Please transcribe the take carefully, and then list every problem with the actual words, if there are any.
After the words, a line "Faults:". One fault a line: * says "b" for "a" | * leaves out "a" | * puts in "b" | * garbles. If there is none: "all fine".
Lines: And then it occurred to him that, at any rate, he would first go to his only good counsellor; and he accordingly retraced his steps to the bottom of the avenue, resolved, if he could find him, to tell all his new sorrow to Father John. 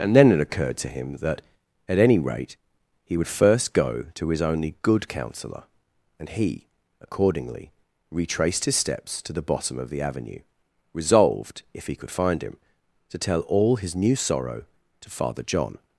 And then it occurred to him that, at any rate, he would first go to his only good counsellor; and he accordingly retraced his steps to the bottom of the avenue, resolved, if he could find him, to tell all his new sorrow to Father John.
Faults:
all fine